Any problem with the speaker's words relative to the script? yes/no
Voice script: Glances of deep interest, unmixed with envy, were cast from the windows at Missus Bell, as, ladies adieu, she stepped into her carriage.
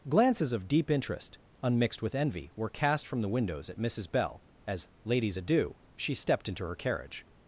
no